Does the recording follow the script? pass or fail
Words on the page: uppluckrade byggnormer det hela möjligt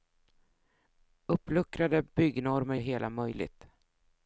pass